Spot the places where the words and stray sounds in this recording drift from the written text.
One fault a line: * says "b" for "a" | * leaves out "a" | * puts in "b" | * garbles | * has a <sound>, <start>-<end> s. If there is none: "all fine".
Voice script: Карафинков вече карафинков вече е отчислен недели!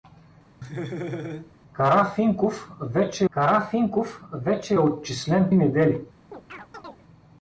* has a laugh, 0.6-1.5 s
* has a chirp, 6.3-7.0 s